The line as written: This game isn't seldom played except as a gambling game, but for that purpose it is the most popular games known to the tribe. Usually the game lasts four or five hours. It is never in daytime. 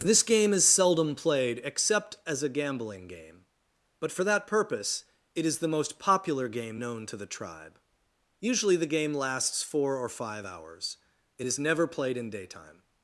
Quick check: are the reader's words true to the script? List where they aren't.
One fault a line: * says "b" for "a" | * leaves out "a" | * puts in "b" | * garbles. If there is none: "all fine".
* says "is" for "isn't"
* says "game" for "games"
* puts in "played"